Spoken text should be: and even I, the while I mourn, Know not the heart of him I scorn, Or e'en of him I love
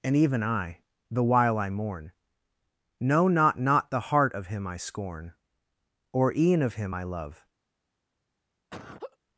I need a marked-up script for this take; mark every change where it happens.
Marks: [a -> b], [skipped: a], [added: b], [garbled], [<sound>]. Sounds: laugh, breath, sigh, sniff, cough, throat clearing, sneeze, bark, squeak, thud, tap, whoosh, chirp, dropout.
and even I, the while I mourn, Know not [added: not] the heart of him I scorn, Or e'en of him I love [laugh]